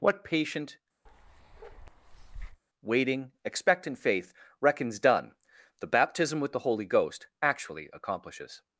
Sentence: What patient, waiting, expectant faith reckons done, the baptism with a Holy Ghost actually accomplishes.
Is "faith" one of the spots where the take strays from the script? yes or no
no